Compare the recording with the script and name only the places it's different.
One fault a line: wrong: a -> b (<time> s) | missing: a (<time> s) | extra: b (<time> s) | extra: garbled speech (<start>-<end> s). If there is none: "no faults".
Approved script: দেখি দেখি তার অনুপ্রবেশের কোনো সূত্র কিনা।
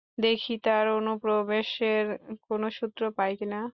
missing: দেখি (0.5 s)
extra: পাই (3.2 s)